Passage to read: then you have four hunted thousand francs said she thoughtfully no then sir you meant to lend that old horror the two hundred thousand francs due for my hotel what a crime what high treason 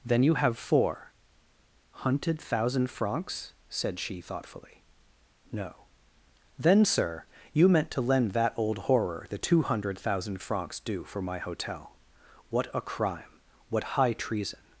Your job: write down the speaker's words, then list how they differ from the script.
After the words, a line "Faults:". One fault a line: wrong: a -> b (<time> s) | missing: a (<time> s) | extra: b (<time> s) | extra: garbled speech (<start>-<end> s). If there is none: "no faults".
then you have four hunted thousand francs said she thoughtfully no then sir you meant to lend that old horror the two hundred thousand francs due for my hotel what a crime what high treason
Faults:
no faults